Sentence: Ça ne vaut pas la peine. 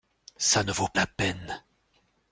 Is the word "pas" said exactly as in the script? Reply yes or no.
no